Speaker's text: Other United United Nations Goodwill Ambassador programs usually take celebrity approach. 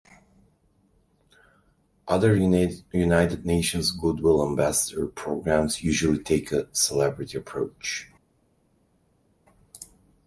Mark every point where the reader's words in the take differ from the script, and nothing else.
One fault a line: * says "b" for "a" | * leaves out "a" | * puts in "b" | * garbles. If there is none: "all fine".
* leaves out "United"
* puts in "a"